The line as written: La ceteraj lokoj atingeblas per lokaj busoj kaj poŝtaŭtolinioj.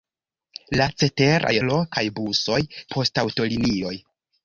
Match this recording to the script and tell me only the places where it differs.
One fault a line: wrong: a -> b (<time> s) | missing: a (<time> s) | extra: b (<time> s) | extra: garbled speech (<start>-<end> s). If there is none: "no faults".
missing: lokoj atingeblas per (1.5 s)
missing: kaj (2.6 s)